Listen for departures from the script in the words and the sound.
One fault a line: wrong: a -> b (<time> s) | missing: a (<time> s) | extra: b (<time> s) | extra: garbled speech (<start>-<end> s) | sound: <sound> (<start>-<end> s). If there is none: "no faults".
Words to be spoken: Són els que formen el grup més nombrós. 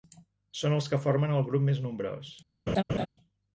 sound: laugh (2.7-3.1 s)